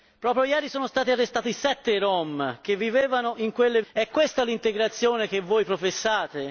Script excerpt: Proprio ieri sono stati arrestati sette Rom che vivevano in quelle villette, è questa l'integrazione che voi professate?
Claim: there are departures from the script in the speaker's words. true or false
true